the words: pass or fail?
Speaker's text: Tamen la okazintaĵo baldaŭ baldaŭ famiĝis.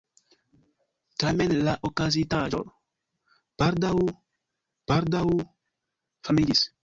pass